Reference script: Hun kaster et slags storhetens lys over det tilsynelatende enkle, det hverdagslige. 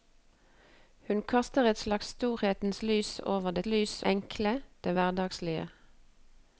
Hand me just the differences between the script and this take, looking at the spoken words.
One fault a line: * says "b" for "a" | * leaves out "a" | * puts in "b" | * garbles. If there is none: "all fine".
* says "lys" for "tilsynelatende"